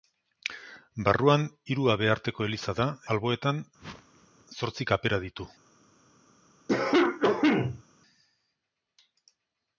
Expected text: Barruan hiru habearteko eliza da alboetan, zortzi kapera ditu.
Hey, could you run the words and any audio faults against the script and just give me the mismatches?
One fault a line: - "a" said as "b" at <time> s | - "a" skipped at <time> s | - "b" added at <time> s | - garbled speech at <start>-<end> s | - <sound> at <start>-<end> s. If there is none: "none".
- whoosh at 3.8-4.5 s
- cough at 6.7-7.8 s